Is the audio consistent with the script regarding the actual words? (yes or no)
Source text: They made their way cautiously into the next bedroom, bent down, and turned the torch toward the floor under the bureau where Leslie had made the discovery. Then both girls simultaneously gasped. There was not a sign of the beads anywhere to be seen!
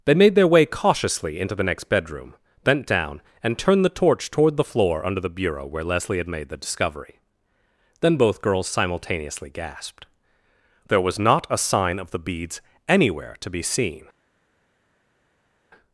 yes